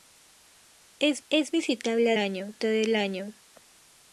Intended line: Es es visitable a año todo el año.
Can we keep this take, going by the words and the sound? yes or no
yes